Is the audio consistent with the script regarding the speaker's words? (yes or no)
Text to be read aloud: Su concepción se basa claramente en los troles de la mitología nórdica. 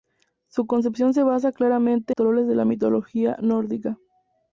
no